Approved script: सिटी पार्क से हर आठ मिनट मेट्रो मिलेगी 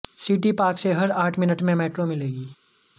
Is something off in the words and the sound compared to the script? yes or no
yes